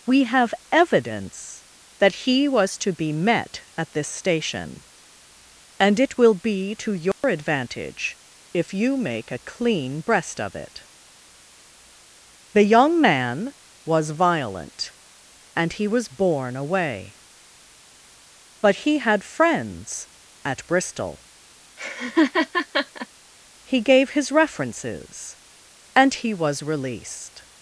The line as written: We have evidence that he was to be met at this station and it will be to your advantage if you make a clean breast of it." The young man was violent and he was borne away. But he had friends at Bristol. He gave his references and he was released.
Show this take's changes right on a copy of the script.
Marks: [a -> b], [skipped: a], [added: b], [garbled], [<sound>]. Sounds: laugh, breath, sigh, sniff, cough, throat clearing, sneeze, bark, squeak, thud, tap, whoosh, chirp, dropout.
We have evidence that he was to be met at this station and it will be to your [dropout] advantage if you make a clean breast of it." The young man was violent and he was borne away. But he had friends at Bristol. [laugh] He gave his references and he was released.